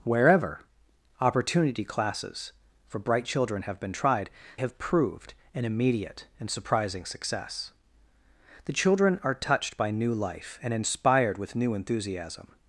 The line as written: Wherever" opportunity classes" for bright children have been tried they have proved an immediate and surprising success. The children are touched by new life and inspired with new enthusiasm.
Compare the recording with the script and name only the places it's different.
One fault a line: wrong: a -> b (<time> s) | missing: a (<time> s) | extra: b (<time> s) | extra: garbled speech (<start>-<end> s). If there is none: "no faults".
missing: they (4.3 s)